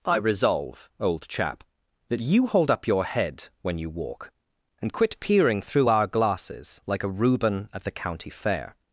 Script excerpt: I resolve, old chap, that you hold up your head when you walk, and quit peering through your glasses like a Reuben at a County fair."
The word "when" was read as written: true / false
true